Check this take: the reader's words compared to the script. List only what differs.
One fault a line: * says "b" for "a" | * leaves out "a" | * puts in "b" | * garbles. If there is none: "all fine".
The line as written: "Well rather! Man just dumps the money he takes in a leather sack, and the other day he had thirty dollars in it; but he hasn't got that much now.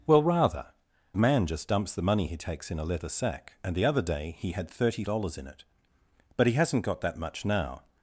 all fine